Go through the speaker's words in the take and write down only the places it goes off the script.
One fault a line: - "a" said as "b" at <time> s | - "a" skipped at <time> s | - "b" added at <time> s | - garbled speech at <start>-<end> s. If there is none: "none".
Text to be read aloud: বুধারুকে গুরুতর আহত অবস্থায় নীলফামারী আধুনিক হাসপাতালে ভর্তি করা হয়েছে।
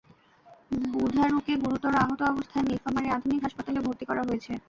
none